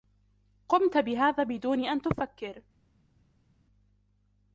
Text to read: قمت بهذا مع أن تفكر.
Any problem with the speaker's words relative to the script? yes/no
yes